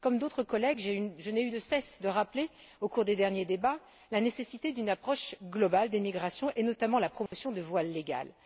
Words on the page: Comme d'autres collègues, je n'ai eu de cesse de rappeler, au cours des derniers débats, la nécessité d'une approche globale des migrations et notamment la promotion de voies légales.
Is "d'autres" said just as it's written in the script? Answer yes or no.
yes